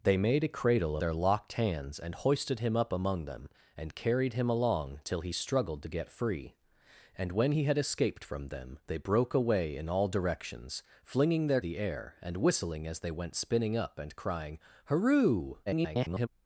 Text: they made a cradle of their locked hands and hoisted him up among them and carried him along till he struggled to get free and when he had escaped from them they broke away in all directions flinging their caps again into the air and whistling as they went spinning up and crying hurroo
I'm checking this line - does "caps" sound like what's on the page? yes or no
no